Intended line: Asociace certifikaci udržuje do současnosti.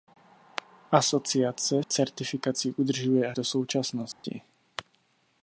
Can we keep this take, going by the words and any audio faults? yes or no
no